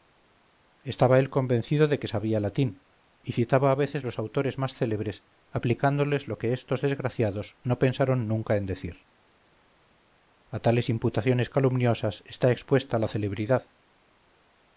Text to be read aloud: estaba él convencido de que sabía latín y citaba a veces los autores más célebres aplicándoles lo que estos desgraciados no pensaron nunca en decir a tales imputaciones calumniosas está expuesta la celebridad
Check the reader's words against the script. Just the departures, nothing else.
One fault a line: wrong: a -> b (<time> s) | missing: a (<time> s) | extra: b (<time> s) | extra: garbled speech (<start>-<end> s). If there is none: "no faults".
no faults